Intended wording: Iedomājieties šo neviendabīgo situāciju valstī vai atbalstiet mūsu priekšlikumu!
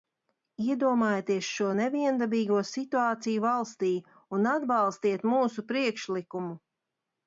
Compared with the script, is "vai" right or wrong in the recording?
wrong